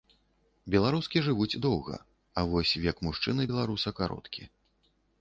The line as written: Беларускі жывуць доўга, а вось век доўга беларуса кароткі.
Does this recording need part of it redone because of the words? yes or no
yes